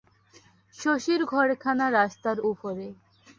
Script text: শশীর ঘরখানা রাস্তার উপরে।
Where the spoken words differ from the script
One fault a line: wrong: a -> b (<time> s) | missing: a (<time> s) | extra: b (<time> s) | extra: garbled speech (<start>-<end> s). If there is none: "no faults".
no faults